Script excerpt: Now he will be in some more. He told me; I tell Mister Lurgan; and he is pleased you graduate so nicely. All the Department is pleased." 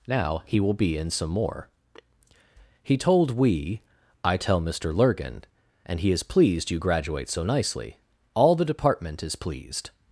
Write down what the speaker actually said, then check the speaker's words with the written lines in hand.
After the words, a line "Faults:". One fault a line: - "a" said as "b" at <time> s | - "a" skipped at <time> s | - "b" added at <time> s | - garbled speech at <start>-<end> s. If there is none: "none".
Now he will be in some more. He told we; I tell Mister Lurgan; and he is pleased you graduate so nicely. All the Department is pleased."
Faults:
- "me" said as "we" at 3.4 s